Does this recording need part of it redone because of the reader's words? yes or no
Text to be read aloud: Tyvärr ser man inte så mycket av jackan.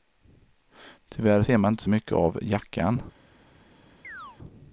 no